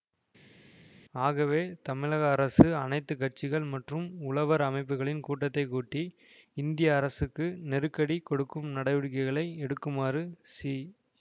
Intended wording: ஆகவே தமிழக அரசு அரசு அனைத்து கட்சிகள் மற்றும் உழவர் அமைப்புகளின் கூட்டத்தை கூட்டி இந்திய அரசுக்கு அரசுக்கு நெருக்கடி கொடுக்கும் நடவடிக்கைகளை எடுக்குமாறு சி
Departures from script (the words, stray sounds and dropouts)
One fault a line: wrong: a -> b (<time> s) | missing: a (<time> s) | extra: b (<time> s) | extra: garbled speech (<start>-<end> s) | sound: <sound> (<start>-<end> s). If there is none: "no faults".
missing: அரசு (2.6 s)
missing: அரசுக்கு (7.5 s)